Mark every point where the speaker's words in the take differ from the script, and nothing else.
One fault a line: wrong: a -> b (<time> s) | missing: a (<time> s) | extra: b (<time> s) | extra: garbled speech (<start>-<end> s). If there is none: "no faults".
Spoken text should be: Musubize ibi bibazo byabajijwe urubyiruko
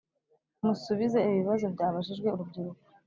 no faults